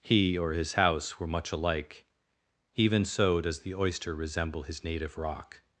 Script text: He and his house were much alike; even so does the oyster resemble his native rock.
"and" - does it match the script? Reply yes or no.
no